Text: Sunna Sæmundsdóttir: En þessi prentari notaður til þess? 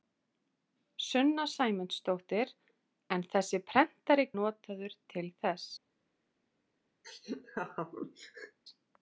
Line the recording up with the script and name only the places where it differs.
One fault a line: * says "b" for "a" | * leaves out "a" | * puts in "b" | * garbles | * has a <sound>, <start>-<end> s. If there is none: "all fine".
* has a laugh, 7.0-8.6 s